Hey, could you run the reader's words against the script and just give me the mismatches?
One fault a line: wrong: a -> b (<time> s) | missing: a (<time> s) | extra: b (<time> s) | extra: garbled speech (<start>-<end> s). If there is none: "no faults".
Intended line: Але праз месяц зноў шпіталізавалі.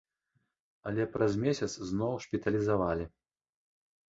no faults